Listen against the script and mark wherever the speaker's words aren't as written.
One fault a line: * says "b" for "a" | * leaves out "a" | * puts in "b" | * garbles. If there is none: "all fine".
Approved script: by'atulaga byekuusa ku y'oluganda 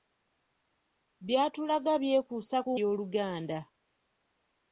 all fine